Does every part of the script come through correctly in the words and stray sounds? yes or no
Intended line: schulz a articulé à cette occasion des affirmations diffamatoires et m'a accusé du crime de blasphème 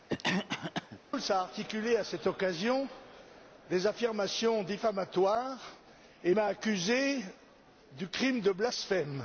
no